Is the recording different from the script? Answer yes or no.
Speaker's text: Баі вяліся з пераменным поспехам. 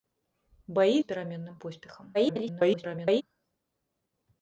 yes